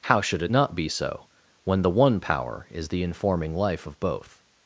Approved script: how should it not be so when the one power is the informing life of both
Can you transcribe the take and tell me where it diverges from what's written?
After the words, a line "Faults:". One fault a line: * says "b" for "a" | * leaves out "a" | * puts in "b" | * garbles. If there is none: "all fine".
how should it not be so when the one power is the informing life of both
Faults:
all fine